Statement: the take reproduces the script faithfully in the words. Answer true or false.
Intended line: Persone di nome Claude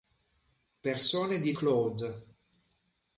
false